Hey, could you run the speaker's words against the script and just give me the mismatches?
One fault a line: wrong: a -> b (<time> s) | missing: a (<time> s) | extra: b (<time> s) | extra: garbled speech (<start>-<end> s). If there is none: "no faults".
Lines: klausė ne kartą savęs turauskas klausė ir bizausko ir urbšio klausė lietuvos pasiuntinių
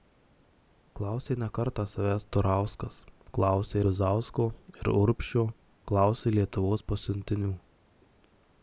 missing: ir (3.8 s)